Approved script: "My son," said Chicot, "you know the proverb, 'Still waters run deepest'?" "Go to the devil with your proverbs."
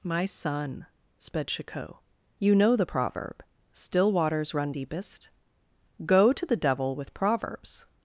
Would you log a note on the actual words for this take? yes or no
yes